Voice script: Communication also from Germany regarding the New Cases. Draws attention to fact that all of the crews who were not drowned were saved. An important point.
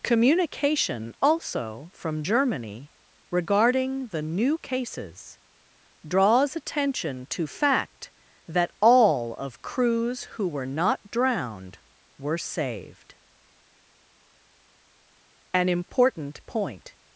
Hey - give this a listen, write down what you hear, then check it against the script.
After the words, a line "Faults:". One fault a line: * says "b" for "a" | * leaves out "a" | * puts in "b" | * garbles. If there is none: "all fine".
Communication also from Germany regarding the New Cases. Draws attention to fact that all of crews who were not drowned were saved. An important point.
Faults:
* leaves out "the"